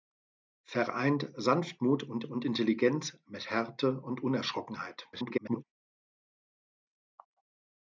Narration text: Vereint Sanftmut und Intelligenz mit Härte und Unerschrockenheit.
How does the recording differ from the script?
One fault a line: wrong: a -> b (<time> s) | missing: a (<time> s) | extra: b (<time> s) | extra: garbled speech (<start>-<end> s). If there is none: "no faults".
extra: und (2.2 s)
extra: garbled speech (5.1-5.6 s)